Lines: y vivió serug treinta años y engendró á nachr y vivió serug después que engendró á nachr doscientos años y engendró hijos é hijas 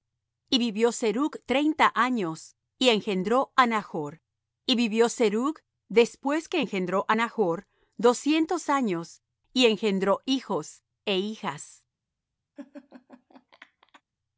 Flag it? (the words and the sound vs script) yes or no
yes